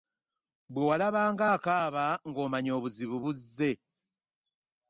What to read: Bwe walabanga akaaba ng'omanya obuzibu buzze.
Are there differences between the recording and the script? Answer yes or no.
no